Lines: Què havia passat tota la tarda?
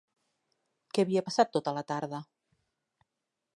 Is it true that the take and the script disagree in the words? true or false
false